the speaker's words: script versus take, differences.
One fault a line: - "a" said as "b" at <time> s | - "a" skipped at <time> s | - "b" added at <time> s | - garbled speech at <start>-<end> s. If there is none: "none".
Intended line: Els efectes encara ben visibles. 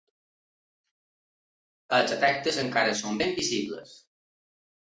- "són" added at 3.0 s